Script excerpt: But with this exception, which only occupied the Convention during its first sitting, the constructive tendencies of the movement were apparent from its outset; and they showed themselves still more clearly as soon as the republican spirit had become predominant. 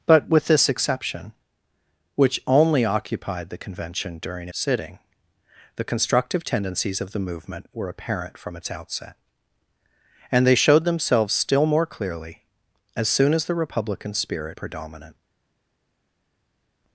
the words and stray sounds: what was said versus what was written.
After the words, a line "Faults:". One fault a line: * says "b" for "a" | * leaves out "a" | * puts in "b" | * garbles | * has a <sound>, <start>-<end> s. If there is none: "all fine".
But with this exception, which only occupied the Convention during sitting, the constructive tendencies of the movement were apparent from its outset; and they showed themselves still more clearly as soon as the republican spirit predominant.
Faults:
* leaves out "its first"
* leaves out "had become"